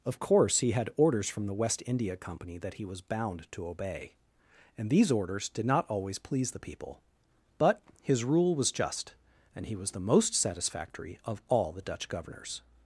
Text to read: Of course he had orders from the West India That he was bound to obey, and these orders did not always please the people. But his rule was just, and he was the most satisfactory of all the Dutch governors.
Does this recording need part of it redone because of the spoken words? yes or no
yes